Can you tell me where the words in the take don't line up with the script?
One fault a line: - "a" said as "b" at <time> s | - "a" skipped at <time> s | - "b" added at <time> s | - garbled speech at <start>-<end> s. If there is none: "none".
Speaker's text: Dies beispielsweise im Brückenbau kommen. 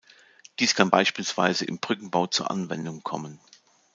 - "kann" added at 0.7 s
- "zur Anwendung" added at 2.3 s